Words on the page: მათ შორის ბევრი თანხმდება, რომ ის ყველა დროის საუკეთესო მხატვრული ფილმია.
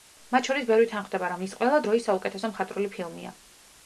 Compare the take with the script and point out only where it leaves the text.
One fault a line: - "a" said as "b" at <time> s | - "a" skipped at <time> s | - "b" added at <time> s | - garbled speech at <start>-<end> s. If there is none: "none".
none